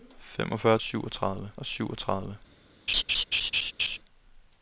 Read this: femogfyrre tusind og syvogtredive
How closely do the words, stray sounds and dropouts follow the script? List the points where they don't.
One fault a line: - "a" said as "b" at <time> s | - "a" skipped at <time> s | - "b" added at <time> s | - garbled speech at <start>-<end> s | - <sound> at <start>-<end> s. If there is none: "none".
- "tusind" said as "syvogtredive" at 0.8 s
- laugh at 2.9-4.0 s